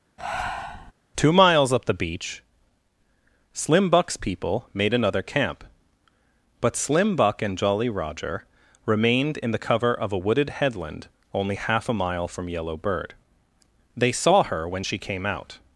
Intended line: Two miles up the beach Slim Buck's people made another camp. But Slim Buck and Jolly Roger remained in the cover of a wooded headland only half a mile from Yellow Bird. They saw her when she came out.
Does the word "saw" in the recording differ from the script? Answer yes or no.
no